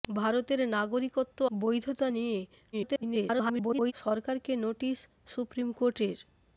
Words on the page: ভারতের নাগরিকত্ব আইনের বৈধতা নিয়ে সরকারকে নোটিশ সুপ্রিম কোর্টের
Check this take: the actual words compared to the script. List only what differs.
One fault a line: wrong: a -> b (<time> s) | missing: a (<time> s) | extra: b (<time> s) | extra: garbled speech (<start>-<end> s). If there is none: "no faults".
missing: আইনের (1.4 s)
extra: garbled speech (2.7-3.9 s)